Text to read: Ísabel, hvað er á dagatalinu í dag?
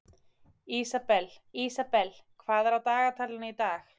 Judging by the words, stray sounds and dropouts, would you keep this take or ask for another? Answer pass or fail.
fail